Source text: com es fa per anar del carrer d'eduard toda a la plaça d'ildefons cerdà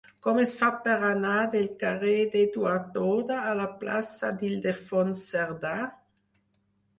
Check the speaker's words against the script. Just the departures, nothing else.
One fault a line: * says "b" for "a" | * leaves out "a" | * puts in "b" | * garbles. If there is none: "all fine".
all fine